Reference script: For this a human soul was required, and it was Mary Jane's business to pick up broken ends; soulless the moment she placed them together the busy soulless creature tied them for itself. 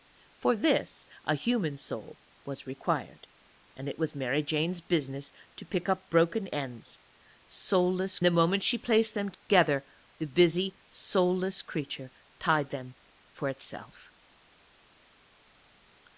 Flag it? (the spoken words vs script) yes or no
no